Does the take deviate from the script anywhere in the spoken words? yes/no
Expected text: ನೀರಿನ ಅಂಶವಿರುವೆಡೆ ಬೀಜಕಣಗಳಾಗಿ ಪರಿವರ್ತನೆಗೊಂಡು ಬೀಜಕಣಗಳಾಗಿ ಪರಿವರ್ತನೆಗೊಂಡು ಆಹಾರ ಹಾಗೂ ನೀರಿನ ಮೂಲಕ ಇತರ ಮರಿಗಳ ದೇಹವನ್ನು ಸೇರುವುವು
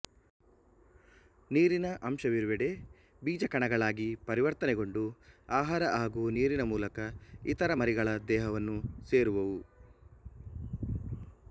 yes